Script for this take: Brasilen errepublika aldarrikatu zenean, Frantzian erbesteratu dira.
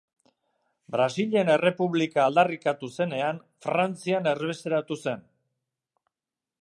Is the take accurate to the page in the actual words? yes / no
no